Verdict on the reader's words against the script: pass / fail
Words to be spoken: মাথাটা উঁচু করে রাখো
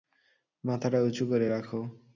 pass